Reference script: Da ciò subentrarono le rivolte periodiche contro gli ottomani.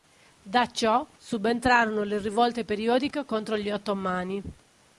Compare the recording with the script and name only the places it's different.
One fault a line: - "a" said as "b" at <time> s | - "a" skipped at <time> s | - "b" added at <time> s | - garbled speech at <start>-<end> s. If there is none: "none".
none